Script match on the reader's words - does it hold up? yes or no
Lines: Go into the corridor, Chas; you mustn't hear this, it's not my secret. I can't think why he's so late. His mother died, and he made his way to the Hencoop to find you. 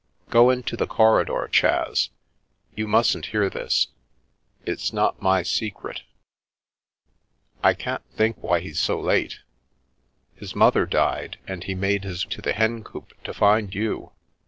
no